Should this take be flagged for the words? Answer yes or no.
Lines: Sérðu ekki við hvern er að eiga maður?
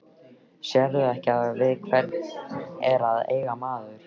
no